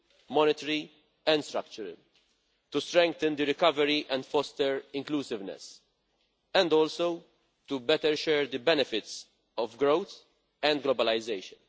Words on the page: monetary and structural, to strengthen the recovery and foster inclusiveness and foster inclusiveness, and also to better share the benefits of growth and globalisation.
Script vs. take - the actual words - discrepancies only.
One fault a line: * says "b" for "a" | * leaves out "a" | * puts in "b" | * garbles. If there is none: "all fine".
* leaves out "foster inclusiveness and"